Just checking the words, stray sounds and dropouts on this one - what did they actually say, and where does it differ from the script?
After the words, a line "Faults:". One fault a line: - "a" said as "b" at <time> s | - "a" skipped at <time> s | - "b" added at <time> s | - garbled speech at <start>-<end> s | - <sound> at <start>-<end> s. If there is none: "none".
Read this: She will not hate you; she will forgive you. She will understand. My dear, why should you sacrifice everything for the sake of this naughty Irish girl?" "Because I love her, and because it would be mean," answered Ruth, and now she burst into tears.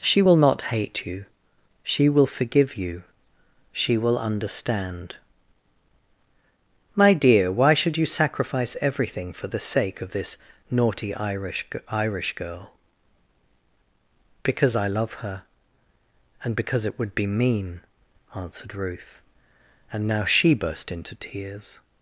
She will not hate you; she will forgive you. She will understand. My dear, why should you sacrifice everything for the sake of this naughty Irish Irish girl?" "Because I love her, and because it would be mean," answered Ruth, and now she burst into tears.
Faults:
- "Irish" added at 11.9 s